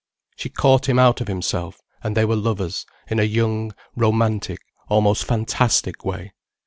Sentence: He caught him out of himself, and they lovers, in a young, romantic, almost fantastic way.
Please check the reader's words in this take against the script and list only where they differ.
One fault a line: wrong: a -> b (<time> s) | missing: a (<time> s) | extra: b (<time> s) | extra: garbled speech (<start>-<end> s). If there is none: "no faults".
wrong: He -> She (0.3 s)
extra: were (2.2 s)